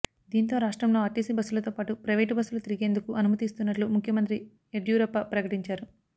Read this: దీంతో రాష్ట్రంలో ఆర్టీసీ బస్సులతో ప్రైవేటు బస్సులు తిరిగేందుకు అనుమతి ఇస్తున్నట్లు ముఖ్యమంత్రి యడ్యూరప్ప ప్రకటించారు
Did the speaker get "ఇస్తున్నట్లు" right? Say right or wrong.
right